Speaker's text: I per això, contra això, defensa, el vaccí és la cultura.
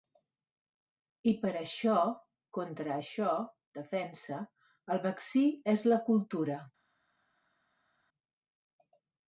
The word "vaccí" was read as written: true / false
true